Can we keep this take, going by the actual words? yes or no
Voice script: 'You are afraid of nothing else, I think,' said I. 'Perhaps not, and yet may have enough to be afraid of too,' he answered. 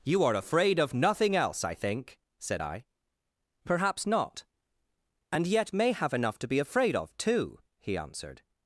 yes